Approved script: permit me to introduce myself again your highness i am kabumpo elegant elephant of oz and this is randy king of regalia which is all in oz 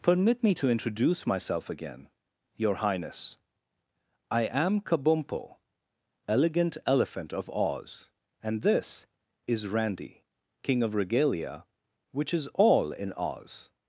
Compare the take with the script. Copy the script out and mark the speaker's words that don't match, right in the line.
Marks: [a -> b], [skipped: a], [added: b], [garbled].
permit me to introduce myself again your highness i am kabumpo elegant elephant of oz and this is randy king of regalia which is all in oz